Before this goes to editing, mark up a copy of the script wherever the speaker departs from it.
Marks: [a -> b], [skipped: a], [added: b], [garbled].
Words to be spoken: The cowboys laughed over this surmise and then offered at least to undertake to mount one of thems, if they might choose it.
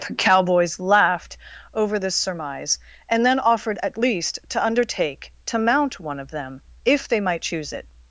The cowboys laughed over this surmise and then offered at least to undertake to mount one of [thems, -> them] if they might choose it.